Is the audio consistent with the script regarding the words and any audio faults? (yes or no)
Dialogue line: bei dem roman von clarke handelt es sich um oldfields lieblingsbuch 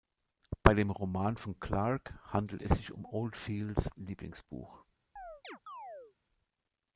no